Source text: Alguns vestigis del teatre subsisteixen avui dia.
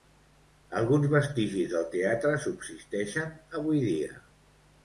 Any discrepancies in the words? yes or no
no